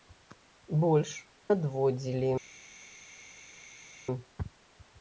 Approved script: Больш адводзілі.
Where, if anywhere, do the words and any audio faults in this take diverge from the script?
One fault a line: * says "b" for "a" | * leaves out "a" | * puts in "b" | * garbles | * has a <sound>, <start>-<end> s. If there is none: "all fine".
all fine